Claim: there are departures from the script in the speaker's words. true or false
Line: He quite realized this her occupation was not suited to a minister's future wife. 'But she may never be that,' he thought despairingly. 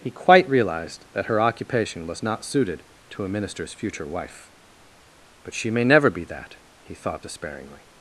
true